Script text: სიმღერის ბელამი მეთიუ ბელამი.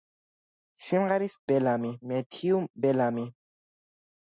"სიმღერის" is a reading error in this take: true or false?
false